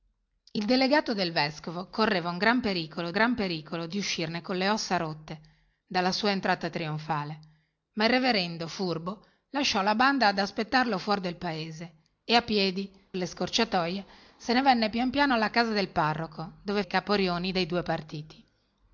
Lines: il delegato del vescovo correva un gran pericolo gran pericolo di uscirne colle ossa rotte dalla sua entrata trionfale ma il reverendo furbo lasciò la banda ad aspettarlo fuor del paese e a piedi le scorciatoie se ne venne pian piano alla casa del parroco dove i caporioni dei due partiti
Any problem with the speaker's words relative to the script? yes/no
no